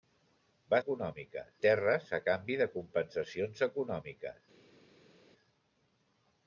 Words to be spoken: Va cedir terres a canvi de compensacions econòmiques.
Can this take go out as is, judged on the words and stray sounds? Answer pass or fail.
fail